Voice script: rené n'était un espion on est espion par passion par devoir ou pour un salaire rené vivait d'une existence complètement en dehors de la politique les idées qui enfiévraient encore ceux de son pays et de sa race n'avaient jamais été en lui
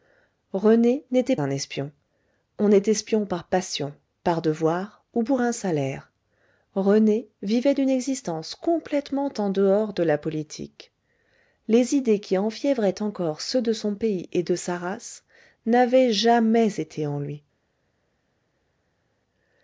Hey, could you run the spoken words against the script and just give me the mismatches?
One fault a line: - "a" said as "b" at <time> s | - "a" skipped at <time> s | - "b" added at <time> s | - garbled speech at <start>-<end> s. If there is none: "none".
none